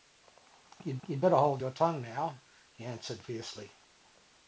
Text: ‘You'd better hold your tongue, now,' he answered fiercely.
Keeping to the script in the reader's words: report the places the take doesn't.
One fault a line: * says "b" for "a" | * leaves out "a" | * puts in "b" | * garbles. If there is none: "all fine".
* puts in "you'd"